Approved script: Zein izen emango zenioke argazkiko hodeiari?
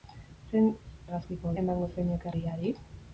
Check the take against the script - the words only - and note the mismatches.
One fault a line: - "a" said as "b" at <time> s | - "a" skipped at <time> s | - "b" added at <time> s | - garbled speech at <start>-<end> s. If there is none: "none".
- "izen" said as "argazkiko" at 1.1 s
- "argazkiko" skipped at 2.3 s